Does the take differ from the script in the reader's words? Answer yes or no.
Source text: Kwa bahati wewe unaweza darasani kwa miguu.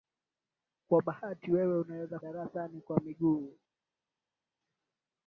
no